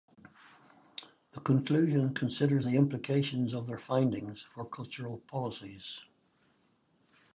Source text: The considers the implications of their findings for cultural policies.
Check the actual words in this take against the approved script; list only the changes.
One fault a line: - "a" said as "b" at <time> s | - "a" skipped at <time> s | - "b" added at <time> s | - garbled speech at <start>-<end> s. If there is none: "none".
- "conclusion" added at 1.4 s